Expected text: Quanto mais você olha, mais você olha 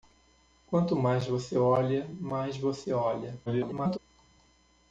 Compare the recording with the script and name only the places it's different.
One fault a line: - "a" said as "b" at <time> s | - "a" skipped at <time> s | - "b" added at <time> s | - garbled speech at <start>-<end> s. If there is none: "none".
- garbled speech at 3.5-4.0 s